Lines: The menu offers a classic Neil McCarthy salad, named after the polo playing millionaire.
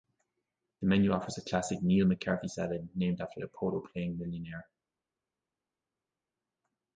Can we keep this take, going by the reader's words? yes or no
yes